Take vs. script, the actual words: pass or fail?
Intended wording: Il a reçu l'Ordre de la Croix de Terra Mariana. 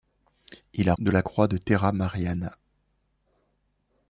fail